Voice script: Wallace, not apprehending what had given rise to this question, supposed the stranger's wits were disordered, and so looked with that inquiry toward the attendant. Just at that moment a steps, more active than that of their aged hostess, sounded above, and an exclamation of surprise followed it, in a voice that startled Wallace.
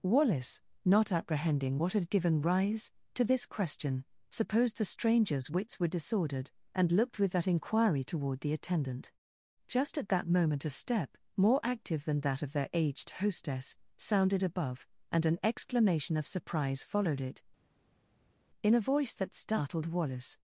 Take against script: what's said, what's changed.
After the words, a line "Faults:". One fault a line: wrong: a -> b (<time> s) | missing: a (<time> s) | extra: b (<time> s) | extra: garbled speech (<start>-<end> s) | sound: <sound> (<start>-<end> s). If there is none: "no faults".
Wallace, not apprehending what had given rise to this question, supposed the stranger's wits were disordered, and looked with that inquiry toward the attendant. Just at that moment a step, more active than that of their aged hostess, sounded above, and an exclamation of surprise followed it, in a voice that startled Wallace.
Faults:
missing: so (6.9 s)
wrong: steps -> step (10.7 s)